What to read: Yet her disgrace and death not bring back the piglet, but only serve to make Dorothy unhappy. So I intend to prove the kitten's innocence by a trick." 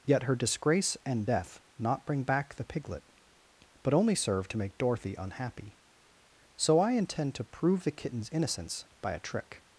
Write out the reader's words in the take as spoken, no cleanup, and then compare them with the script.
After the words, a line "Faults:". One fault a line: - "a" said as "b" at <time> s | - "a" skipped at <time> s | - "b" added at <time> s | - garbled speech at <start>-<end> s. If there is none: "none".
Yet her disgrace and death not bring back the piglet, but only serve to make Dorothy unhappy. So I intend to prove the kitten's innocence by a trick."
Faults:
none